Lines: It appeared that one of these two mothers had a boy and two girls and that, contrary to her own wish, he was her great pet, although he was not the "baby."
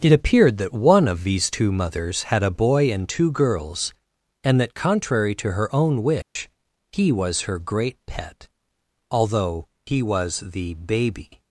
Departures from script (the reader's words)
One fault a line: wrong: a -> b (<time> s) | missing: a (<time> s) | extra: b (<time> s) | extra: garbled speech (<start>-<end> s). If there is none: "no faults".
missing: not (10.4 s)